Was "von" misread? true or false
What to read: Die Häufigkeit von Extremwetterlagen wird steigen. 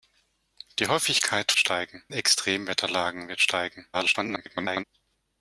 true